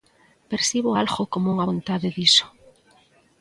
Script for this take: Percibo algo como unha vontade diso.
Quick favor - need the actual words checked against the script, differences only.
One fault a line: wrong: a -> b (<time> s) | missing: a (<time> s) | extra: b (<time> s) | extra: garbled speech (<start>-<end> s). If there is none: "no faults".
no faults